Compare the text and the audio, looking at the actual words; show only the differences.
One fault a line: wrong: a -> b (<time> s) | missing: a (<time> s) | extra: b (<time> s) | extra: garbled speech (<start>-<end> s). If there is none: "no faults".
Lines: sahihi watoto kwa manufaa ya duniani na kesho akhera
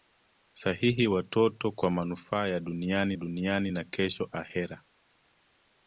extra: duniani (3.1 s)